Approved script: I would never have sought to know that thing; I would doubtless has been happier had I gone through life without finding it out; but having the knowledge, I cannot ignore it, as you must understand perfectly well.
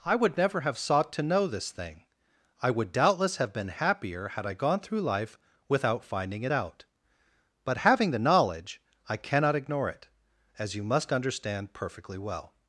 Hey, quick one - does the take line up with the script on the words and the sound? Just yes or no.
no